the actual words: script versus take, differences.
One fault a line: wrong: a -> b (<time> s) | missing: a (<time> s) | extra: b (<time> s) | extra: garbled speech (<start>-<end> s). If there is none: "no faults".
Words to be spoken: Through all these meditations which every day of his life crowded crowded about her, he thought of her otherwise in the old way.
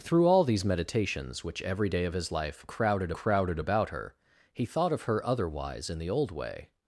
no faults